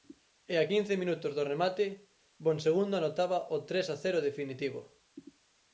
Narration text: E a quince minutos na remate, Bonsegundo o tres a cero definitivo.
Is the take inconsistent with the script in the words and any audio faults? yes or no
yes